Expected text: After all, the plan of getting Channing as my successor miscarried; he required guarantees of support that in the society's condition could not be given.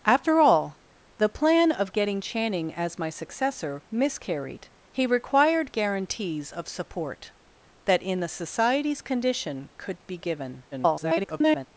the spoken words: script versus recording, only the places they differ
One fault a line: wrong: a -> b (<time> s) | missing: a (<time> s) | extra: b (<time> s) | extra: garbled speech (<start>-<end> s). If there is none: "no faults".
missing: not (10.0 s)
extra: garbled speech (10.7-11.7 s)